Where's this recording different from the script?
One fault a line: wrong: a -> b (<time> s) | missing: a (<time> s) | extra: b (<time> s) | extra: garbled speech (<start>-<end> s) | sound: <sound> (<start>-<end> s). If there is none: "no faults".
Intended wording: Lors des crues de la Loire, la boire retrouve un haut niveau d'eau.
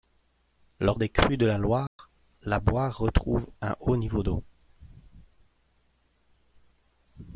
sound: dropout (1.9-2.0 s)